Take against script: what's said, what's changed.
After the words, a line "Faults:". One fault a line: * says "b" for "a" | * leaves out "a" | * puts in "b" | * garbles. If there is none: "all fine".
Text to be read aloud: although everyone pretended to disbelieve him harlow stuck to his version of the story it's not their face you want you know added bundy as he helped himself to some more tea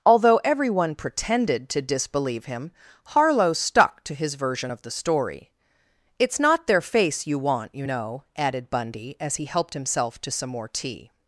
although everyone pretended to disbelieve him harlow stuck to his version of the story it's not their face you want you know added bundy as he helped himself to some more tea
Faults:
all fine